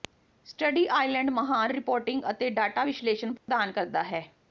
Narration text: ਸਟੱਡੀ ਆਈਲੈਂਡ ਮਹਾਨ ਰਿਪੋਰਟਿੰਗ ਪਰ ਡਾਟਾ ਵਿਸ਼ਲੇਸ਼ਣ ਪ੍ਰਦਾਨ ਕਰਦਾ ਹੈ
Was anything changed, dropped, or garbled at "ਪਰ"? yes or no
yes